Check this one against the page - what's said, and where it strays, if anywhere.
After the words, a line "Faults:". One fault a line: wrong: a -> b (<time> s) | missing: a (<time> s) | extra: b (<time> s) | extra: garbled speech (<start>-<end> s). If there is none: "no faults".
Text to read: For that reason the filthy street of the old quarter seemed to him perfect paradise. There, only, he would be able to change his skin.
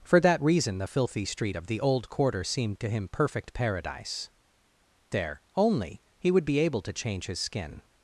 For that reason the filthy street of the old quarter seemed to him perfect paradise. There, only, he would be able to change his skin.
Faults:
no faults